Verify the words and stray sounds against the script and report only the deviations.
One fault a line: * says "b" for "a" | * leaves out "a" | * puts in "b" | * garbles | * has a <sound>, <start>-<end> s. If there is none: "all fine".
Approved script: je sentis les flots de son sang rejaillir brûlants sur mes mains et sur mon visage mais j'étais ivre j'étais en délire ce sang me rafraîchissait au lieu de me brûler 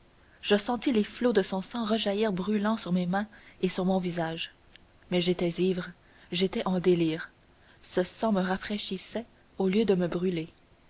all fine